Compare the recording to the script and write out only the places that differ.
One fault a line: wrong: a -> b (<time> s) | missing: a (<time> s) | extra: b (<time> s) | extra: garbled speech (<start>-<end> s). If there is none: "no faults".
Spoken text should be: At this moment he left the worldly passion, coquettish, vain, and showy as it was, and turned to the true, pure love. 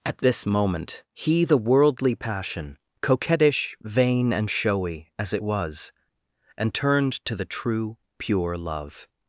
missing: left (1.4 s)